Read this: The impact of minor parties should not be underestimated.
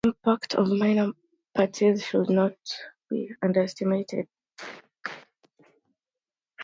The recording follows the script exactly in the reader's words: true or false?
true